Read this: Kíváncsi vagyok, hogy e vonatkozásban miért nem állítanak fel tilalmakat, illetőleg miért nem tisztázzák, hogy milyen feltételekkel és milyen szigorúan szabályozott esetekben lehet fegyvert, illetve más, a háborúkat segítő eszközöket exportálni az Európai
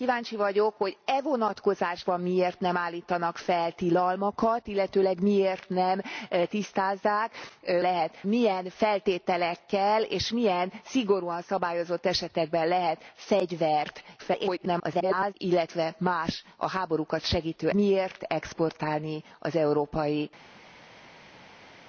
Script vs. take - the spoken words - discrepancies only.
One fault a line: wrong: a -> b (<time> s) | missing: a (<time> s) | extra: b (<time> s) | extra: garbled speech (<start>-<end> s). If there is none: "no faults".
wrong: hogy -> lehet (7.8 s)
extra: garbled speech (14.2-15.3 s)
wrong: eszközöket -> miért (17.7 s)